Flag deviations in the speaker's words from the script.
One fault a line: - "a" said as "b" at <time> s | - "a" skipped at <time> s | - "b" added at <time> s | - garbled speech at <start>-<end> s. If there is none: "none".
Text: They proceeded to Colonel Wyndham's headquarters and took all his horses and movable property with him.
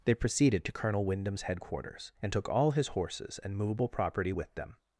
- "him" said as "them" at 4.5 s